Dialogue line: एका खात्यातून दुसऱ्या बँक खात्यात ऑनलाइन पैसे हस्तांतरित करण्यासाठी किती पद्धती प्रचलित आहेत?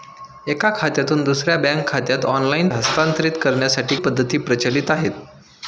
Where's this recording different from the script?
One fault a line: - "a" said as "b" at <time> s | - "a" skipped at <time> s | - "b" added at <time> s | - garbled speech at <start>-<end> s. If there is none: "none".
- "पैसे" skipped at 2.7 s
- "किती" skipped at 3.9 s